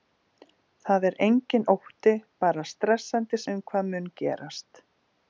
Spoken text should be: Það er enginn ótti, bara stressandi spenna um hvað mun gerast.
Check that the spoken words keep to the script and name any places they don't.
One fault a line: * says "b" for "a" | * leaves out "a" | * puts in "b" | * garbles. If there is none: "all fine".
* leaves out "spenna"